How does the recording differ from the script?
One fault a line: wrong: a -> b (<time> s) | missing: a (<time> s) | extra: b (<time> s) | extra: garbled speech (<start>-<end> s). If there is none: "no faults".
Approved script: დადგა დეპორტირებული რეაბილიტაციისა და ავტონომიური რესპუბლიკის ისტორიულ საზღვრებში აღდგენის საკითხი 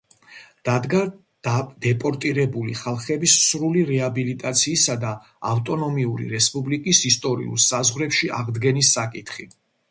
extra: ხალხების სრული (2.8 s)